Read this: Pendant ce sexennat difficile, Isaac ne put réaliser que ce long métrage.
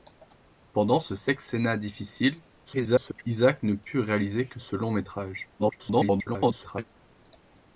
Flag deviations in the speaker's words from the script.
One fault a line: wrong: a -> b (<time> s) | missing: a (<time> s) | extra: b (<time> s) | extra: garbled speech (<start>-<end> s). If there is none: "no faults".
extra: garbled speech (2.7-3.2 s)
extra: garbled speech (5.6-6.8 s)